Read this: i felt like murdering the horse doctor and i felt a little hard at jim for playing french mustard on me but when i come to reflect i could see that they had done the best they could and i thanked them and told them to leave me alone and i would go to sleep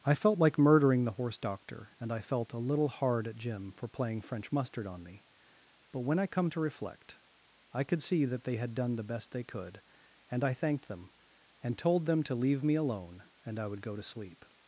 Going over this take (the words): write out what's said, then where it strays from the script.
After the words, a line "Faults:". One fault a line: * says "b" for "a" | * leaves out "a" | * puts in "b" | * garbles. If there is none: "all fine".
i felt like murdering the horse doctor and i felt a little hard at jim for playing french mustard on me but when i come to reflect i could see that they had done the best they could and i thanked them and told them to leave me alone and i would go to sleep
Faults:
all fine